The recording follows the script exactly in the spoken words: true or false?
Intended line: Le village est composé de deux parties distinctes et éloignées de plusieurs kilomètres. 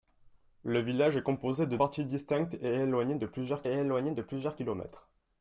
false